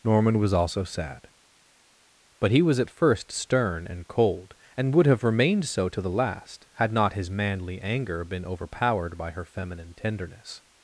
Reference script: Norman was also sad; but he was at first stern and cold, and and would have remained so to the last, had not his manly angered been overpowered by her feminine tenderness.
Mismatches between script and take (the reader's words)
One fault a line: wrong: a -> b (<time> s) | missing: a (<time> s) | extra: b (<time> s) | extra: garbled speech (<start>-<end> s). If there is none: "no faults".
missing: and (4.9 s)
wrong: angered -> anger (7.8 s)